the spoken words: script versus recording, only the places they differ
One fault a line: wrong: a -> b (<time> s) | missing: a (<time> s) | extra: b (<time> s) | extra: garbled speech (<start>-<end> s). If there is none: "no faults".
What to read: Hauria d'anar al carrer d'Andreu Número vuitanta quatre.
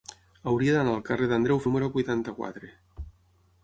no faults